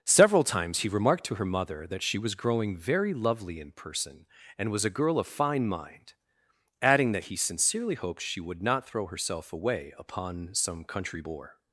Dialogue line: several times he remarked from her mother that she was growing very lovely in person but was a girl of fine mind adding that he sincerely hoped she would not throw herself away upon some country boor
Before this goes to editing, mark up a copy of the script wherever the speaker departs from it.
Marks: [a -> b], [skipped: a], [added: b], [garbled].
several times he remarked [from -> to] her mother that she was growing very lovely in person [but -> and] was a girl of fine mind adding that he sincerely hoped she would not throw herself away upon some country boor